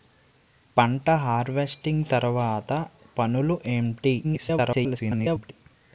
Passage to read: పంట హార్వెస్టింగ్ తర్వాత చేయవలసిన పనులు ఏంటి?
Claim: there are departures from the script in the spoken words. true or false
true